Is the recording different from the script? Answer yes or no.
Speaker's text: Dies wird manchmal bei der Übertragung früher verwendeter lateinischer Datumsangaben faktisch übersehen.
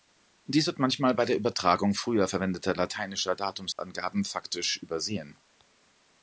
no